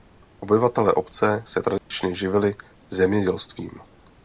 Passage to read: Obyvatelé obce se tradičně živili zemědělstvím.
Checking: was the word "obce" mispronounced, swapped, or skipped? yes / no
no